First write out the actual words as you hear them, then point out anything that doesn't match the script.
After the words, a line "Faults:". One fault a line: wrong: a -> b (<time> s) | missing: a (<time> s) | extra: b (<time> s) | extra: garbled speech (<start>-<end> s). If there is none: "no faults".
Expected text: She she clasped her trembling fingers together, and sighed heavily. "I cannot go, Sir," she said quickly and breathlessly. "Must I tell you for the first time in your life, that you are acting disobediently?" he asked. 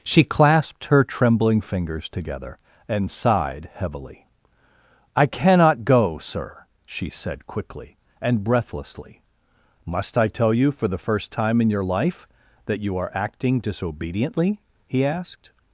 She clasped her trembling fingers together, and sighed heavily. "I cannot go, Sir," she said quickly and breathlessly. "Must I tell you for the first time in your life, that you are acting disobediently?" he asked.
Faults:
missing: she (0.2 s)